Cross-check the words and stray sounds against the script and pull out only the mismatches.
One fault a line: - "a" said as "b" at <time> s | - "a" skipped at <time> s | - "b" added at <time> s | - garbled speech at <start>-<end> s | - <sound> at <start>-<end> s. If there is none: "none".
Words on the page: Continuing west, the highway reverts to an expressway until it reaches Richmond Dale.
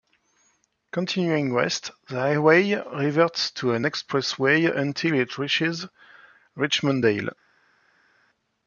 none